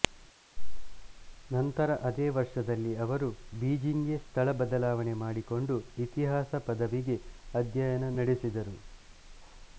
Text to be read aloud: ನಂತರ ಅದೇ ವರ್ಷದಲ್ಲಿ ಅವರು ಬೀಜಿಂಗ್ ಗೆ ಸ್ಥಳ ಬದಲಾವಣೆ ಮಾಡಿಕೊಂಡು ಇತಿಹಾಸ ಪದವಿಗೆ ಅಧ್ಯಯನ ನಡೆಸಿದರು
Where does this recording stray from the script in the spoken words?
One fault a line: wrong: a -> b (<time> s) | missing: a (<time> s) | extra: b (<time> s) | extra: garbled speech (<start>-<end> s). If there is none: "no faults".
no faults